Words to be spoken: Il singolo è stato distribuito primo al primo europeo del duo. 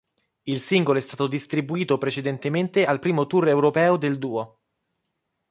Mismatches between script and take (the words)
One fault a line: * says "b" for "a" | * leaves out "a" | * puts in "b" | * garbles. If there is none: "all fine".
* says "precedentemente" for "primo"
* puts in "tour"